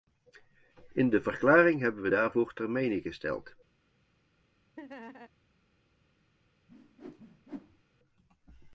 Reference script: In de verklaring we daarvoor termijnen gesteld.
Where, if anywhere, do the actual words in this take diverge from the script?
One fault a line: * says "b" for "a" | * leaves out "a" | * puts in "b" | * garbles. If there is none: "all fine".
* puts in "hebben"